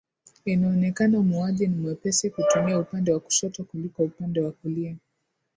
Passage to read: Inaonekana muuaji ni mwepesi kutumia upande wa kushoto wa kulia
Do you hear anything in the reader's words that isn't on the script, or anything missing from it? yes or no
yes